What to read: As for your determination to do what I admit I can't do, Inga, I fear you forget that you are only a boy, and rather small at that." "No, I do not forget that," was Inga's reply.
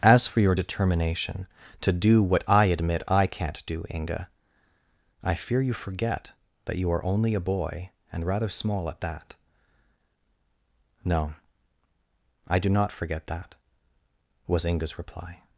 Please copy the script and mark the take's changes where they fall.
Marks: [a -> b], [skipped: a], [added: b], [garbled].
As for your determination to do what I admit I can't do, Inga, I fear you forget that you are only a boy, and rather small at that." "No, I do not forget that," was Inga's reply.